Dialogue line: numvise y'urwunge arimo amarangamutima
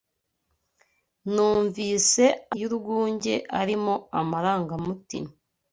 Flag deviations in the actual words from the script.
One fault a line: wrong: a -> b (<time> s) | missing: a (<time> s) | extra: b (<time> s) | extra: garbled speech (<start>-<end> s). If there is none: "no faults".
no faults